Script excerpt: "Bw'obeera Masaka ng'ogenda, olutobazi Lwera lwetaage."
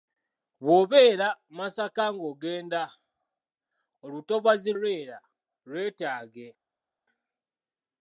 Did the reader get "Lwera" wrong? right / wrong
right